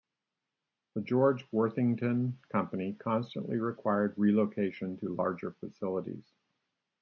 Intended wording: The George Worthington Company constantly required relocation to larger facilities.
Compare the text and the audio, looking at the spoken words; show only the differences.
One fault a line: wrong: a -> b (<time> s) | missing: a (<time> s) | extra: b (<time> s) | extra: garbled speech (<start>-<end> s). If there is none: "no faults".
no faults